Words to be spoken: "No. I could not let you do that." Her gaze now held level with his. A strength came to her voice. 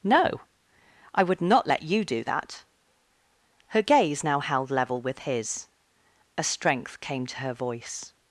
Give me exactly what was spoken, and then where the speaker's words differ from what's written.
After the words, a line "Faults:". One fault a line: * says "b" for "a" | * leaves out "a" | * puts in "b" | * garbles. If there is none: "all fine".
"No. I would not let you do that." Her gaze now held level with his. A strength came to her voice.
Faults:
* says "would" for "could"